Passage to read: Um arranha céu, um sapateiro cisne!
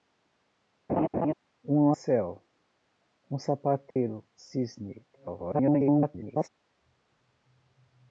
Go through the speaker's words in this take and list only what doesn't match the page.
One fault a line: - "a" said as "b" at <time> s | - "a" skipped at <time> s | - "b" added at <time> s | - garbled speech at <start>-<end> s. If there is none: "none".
- "arranha" skipped at 1.9 s
- garbled speech at 5.1-6.5 s